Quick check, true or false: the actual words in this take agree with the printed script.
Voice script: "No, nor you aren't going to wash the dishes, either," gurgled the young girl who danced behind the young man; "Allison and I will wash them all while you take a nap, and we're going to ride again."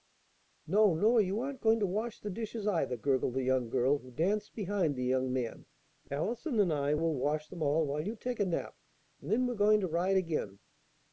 false